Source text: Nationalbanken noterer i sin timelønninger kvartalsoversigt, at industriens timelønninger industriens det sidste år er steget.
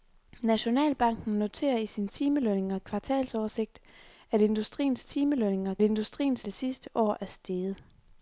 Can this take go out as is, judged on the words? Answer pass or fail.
pass